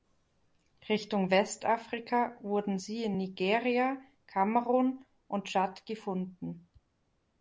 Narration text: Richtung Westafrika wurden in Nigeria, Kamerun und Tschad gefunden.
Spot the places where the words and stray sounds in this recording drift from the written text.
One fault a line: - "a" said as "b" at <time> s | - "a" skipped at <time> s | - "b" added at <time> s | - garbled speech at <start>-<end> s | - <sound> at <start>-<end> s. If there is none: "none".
- "sie" added at 2.7 s